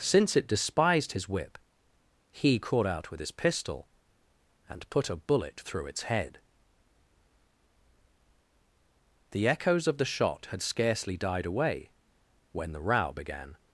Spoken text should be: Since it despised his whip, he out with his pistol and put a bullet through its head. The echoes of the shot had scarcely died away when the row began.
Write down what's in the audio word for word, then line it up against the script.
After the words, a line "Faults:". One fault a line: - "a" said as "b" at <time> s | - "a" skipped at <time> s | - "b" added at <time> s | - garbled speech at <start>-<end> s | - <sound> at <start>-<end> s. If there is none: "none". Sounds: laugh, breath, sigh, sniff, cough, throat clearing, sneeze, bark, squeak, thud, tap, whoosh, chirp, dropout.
Since it despised his whip, he caught out with his pistol and put a bullet through its head. The echoes of the shot had scarcely died away when the row began.
Faults:
- "caught" added at 2.6 s